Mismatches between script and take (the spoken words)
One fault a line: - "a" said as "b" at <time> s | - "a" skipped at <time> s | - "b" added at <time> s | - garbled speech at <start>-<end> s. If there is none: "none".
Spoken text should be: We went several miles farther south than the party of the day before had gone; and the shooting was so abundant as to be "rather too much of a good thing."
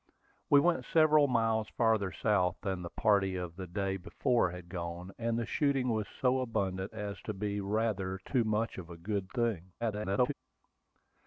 - garbled speech at 9.8-10.3 s